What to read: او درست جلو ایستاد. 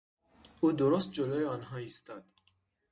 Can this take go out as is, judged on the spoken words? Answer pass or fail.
fail